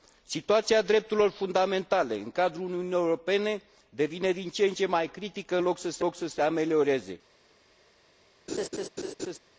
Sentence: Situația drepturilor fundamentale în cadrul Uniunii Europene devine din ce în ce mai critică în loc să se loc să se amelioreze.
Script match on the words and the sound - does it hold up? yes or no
no